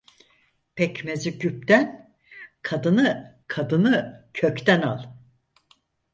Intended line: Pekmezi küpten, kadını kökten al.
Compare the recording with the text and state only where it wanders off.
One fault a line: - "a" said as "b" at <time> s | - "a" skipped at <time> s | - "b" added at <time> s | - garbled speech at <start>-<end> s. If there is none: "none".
- "kadını" added at 3.5 s